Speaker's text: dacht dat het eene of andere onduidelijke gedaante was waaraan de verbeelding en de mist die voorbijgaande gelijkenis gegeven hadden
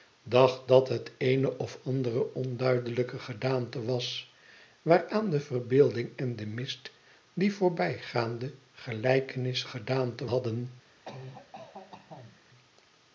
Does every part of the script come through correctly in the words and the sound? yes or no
no